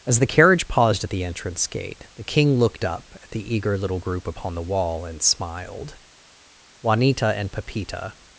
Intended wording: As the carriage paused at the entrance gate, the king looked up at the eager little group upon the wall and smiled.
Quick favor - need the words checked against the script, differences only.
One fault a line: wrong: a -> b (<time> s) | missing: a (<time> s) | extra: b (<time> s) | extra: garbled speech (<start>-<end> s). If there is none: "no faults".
extra: Juanita and Pepita (6.8 s)